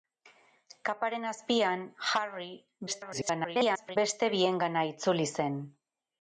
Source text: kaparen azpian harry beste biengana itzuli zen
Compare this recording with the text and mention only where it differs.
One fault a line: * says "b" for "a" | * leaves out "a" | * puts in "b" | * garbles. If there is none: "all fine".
* garbles